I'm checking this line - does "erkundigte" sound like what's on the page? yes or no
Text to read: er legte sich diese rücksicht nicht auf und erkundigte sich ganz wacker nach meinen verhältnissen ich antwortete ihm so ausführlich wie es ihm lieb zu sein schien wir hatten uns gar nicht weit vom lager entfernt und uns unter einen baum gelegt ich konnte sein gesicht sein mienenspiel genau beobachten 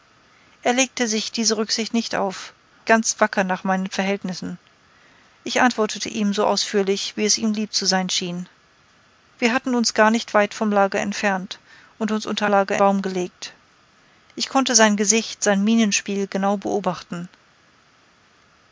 no